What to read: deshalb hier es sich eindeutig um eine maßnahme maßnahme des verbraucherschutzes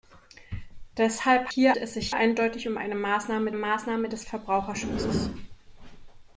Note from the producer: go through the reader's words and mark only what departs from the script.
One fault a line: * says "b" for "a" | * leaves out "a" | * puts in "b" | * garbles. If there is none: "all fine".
all fine